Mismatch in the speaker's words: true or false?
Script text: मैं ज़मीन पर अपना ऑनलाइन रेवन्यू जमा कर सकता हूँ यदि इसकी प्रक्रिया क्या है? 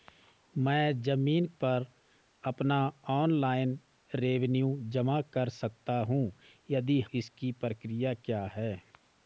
false